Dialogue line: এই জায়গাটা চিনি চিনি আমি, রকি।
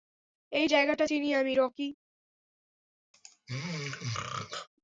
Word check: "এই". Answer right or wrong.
right